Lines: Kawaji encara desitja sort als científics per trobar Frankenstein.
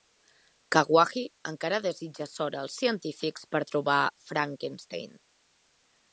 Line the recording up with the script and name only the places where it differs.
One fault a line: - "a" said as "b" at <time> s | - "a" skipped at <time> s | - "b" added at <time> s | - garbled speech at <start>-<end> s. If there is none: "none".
none